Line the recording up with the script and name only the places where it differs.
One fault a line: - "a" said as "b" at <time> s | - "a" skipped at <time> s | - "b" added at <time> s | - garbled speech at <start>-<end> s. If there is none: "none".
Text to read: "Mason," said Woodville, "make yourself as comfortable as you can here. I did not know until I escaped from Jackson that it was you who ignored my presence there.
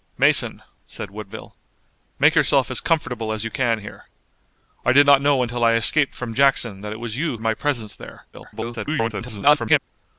- "who ignored" skipped at 7.4 s
- garbled speech at 8.3-9.8 s